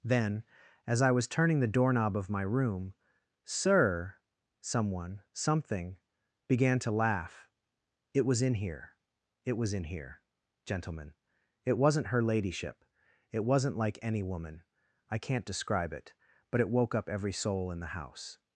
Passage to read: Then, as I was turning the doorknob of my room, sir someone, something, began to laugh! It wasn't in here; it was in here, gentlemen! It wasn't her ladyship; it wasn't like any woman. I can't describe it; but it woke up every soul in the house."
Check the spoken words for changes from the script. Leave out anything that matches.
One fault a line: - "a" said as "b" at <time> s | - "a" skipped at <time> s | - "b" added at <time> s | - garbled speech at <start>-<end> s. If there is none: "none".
- "wasn't" said as "was" at 8.3 s